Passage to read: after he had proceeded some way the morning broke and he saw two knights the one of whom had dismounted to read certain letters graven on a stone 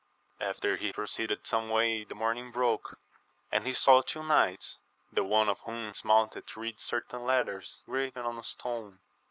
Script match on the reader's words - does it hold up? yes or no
no